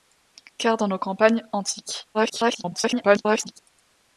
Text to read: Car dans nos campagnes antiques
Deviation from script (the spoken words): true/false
true